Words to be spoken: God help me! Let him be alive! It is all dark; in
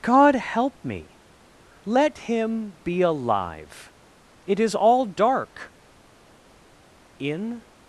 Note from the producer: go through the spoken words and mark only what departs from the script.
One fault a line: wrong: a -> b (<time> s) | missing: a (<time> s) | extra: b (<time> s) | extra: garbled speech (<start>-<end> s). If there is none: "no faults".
no faults